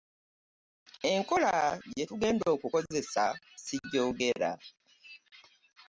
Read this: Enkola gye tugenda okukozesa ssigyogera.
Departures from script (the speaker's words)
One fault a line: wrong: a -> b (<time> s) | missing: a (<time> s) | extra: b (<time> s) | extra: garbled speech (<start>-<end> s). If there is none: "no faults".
no faults